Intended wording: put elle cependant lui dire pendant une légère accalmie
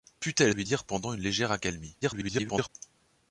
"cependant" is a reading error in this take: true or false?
true